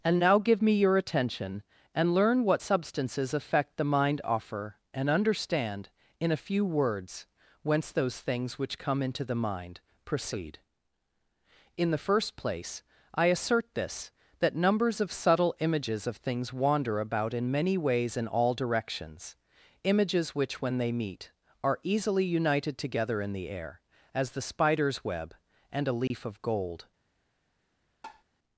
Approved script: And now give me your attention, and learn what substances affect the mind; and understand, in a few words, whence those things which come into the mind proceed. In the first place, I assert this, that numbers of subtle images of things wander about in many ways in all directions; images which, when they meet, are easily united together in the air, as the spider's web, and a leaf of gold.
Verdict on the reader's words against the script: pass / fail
fail